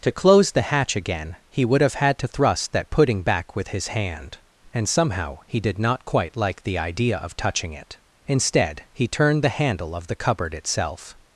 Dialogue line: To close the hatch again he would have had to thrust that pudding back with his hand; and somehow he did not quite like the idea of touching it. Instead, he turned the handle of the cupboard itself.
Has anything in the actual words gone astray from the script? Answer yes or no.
no